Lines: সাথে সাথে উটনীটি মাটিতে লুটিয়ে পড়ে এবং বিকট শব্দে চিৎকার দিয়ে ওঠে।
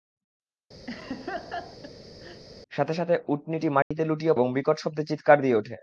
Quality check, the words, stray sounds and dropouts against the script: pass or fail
fail